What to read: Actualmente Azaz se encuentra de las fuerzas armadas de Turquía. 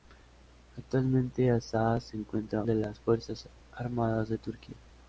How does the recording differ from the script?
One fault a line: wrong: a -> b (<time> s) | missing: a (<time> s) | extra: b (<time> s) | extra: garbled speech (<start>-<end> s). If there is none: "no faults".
no faults